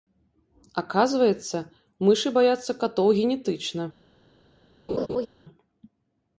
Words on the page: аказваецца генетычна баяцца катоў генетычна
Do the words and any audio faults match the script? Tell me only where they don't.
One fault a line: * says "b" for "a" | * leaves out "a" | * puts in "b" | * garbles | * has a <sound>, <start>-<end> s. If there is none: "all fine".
* says "мышы" for "генетычна"
* has a laugh, 4.9-5.3 s